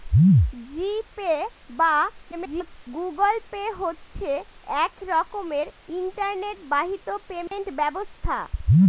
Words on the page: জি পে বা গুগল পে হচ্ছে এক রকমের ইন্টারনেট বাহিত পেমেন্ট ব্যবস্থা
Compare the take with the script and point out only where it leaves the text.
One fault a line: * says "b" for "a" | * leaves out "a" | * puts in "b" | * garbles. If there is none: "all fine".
* garbles